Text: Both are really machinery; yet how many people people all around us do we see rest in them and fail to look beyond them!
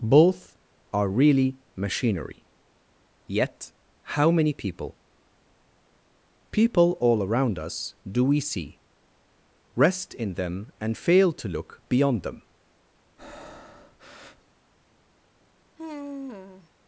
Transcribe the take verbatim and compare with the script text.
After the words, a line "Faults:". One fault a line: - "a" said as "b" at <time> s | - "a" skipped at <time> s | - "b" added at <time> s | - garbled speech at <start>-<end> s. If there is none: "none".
Both are really machinery; yet how many people people all around us do we see rest in them and fail to look beyond them!
Faults:
none